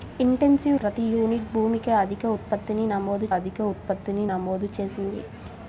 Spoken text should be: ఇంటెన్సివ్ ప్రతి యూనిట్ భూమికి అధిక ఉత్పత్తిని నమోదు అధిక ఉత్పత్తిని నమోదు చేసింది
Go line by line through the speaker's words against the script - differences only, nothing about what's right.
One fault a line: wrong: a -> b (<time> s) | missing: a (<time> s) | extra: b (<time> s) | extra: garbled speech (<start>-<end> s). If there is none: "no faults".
no faults